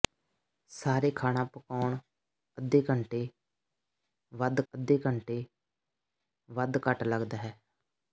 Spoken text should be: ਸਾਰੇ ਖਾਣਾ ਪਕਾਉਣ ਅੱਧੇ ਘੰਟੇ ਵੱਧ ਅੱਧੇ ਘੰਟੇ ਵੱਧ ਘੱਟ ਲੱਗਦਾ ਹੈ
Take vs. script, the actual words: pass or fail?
pass